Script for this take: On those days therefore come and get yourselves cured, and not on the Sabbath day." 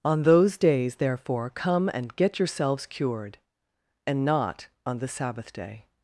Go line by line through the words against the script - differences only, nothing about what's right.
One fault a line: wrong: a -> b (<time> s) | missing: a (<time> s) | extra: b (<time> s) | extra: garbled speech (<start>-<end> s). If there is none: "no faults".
no faults